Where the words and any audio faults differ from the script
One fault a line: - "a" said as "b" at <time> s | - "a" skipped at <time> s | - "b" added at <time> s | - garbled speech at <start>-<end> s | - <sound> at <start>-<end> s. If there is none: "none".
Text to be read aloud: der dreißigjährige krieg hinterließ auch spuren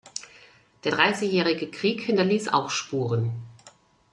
none